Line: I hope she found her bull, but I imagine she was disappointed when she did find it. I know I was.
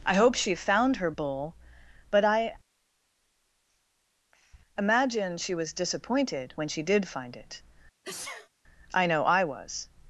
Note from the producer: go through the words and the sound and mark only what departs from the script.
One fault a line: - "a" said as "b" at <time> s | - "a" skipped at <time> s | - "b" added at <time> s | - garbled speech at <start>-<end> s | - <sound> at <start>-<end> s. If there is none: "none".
- sneeze at 8.0-8.5 s